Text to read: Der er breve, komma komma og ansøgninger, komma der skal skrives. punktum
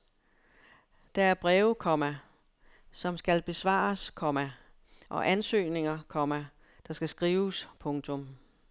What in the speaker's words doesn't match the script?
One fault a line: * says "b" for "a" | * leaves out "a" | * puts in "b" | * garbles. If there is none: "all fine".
* puts in "som skal besvares"